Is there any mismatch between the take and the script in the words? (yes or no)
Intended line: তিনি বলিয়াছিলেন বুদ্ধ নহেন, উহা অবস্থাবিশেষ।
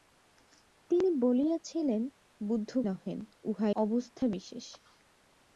no